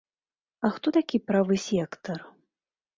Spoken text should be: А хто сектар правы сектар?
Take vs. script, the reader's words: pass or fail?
fail